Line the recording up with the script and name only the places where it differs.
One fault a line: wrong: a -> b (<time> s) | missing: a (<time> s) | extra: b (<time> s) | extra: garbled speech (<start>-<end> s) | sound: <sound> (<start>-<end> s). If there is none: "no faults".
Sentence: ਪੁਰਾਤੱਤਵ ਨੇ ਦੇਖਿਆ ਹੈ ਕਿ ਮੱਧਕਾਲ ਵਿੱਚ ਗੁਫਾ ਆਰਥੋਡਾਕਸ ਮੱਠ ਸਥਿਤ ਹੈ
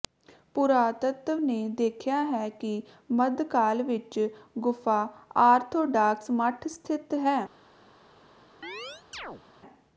sound: chirp (8.6-9.4 s)